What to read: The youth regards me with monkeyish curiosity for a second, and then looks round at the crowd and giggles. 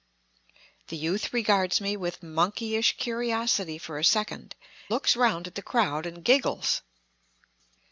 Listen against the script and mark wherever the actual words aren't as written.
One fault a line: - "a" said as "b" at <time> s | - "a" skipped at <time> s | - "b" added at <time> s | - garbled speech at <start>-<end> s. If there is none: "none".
- "and then" skipped at 4.5 s